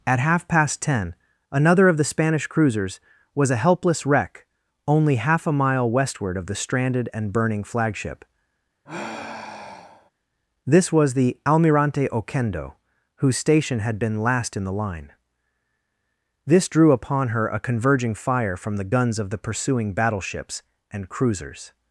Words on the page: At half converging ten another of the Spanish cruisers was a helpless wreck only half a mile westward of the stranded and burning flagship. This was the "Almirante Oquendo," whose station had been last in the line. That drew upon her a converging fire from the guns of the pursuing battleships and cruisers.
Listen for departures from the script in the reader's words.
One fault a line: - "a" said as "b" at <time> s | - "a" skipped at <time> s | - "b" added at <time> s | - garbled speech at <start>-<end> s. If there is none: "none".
- "converging" said as "past" at 0.5 s
- "That" said as "This" at 16.4 s